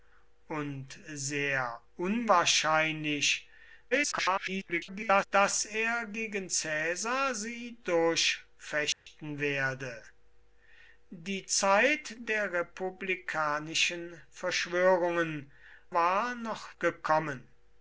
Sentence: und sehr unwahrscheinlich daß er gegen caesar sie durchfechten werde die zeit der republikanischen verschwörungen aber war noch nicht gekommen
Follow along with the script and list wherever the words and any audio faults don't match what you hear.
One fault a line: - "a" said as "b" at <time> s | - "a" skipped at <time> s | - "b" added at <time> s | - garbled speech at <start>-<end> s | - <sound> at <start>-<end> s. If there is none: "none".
- garbled speech at 3.9-5.3 s
- dropout at 8.9-9.1 s
- "aber" skipped at 15.5 s
- "nicht" skipped at 16.8 s